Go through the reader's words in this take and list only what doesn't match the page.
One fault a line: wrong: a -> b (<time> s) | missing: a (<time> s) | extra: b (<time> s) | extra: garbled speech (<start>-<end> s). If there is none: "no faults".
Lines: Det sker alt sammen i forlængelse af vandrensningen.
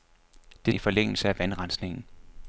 missing: sker alt sammen (0.7 s)